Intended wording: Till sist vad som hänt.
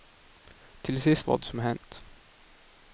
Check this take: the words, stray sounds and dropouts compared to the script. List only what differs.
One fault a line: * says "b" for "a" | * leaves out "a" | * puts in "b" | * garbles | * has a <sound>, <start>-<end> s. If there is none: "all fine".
all fine